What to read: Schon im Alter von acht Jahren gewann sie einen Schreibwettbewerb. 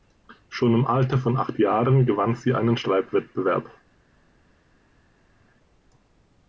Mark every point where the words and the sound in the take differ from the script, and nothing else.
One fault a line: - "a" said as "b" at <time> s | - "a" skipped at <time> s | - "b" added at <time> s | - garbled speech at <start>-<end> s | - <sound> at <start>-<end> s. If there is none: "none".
none